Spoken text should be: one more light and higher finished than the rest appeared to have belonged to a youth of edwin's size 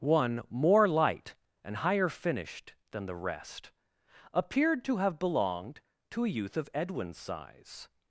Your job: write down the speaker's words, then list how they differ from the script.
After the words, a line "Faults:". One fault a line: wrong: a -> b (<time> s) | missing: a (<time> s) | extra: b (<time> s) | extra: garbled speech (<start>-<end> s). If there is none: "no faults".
one more light and higher finished than the rest appeared to have belonged to a youth of edwin's size
Faults:
no faults